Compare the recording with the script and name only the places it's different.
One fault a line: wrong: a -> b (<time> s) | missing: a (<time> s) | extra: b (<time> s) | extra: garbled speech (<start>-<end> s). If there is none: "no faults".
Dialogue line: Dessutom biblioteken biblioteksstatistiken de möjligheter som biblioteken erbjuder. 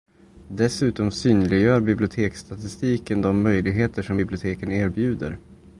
wrong: biblioteken -> synliggör (1.1 s)